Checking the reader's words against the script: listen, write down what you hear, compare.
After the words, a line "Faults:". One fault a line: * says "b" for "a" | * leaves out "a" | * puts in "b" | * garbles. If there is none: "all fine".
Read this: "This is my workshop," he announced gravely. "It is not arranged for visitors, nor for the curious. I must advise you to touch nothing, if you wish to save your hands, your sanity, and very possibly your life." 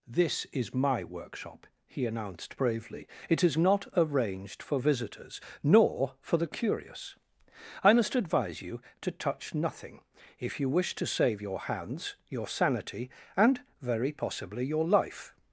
"This is my workshop," he announced bravely. "It is not arranged for visitors, nor for the curious. I must advise you to touch nothing, if you wish to save your hands, your sanity, and very possibly your life."
Faults:
* says "bravely" for "gravely"